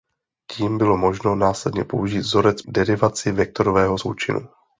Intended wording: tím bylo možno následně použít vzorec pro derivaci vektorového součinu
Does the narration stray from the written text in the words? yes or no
yes